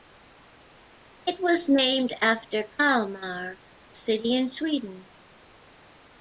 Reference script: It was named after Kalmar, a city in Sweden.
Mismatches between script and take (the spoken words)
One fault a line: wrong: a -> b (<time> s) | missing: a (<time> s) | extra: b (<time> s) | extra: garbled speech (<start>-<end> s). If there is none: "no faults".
no faults